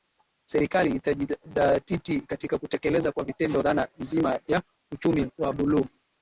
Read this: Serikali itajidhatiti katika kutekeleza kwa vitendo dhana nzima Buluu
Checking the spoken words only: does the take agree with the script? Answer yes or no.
no